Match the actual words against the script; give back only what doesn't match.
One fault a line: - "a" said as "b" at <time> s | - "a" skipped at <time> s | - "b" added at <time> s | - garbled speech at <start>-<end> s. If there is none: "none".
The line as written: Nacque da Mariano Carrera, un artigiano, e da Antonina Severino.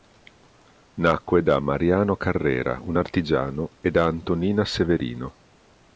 none